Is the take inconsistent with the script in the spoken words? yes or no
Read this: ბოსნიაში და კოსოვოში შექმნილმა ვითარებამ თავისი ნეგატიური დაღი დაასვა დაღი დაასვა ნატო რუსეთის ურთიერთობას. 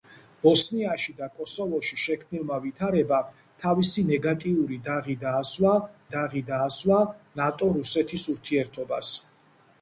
no